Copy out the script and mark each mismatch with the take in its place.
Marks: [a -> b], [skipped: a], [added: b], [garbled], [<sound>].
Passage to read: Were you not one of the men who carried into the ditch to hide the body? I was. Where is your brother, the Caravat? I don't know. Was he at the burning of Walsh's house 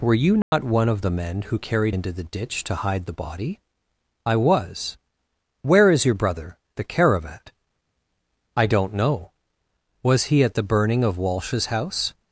Were you not [dropout] one of the men who carried into the ditch to hide the body? I was. Where is your brother, the Caravat? I don't know. Was he at the burning of Walsh's house